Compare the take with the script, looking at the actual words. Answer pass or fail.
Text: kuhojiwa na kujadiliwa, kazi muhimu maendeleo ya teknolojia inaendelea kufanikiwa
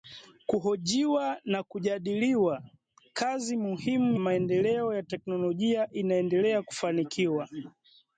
pass